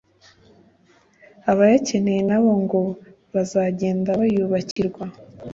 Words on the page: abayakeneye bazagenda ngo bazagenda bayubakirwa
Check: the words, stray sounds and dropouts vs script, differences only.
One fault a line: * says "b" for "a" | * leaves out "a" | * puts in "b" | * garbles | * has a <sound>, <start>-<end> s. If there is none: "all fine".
* says "nabo" for "bazagenda"
* has a dropout, 4.7-4.8 s